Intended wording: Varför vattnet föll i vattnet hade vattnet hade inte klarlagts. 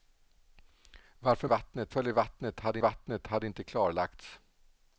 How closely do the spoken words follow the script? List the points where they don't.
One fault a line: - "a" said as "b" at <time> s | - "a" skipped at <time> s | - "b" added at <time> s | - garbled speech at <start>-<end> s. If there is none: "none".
none